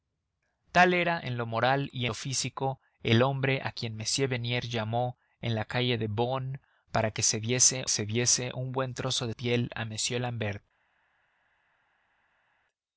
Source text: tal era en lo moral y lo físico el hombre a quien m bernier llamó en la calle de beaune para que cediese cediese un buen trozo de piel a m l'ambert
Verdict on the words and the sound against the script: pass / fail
pass